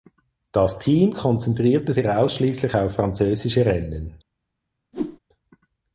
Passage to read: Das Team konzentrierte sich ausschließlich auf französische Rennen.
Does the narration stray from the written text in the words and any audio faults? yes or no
yes